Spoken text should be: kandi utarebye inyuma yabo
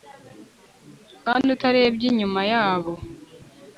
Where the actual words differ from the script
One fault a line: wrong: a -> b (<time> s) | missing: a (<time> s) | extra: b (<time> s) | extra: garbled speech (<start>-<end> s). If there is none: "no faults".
no faults